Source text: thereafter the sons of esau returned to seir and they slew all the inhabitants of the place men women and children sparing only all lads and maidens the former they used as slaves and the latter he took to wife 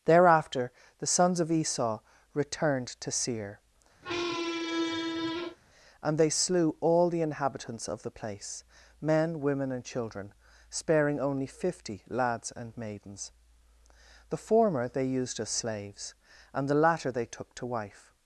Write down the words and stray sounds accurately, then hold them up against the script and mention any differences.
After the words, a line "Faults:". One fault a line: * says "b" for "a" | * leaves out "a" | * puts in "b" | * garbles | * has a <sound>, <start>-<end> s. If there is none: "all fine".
thereafter the sons of esau returned to seir and they slew all the inhabitants of the place men women and children sparing only fifty lads and maidens the former they used as slaves and the latter they took to wife
Faults:
* has a squeak, 4.0-5.6 s
* says "fifty" for "all"
* says "they" for "he"